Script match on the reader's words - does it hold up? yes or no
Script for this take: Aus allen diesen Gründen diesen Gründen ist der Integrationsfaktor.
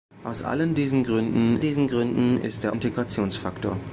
yes